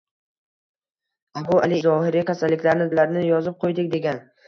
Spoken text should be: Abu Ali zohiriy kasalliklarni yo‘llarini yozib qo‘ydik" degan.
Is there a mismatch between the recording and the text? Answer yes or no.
no